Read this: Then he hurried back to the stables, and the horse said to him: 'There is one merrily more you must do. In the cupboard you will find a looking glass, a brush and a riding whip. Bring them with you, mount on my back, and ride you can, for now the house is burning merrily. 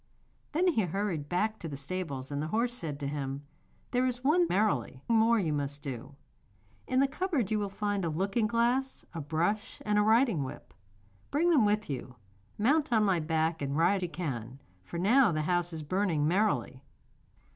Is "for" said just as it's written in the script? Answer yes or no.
yes